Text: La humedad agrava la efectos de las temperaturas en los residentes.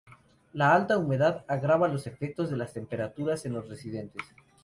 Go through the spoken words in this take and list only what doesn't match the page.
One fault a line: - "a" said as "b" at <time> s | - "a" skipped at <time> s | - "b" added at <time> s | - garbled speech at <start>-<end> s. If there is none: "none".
- "alta" added at 0.7 s
- "la" said as "los" at 1.9 s